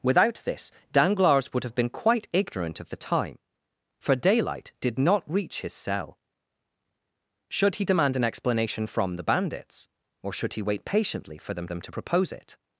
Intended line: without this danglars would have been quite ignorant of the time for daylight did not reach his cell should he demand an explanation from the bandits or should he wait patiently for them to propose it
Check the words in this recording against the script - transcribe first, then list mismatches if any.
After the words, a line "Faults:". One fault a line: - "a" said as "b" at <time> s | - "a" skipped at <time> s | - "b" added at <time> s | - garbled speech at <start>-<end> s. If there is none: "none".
without this danglars would have been quite ignorant of the time for daylight did not reach his cell should he demand an explanation from the bandits or should he wait patiently for them them to propose it
Faults:
- "them" added at 11.7 s